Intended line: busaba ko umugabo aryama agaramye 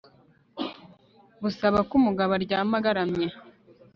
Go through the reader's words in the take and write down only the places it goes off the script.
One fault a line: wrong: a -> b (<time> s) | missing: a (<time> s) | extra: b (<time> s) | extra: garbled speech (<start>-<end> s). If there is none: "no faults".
no faults